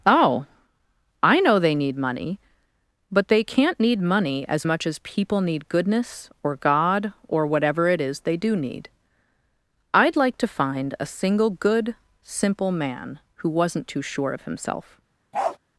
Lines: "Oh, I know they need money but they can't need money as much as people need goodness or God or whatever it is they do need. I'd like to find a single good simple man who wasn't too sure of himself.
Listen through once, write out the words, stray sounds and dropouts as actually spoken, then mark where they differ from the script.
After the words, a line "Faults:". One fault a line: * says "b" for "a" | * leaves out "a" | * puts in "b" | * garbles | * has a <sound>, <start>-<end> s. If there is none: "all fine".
"Oh, I know they need money but they can't need money as much as people need goodness or God or whatever it is they do need. I'd like to find a single good simple man who wasn't too sure of himself.
Faults:
* has a bark, 15.3-15.6 s